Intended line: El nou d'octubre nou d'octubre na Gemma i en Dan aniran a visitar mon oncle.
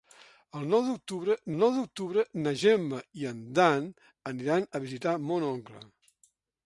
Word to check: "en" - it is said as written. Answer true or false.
true